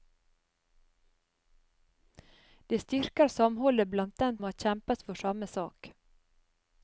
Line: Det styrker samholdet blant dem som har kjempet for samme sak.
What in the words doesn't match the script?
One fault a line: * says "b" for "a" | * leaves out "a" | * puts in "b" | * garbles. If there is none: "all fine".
* leaves out "som"